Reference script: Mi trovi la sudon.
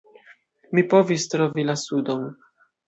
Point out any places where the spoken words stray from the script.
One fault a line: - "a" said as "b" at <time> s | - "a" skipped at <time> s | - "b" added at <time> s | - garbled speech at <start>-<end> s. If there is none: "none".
- "povis" added at 0.9 s